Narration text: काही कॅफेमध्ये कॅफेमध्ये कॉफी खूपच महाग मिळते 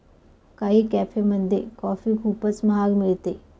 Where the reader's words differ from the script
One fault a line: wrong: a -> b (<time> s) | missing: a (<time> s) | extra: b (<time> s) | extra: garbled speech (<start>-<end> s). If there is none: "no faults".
missing: कॅफेमध्ये (1.6 s)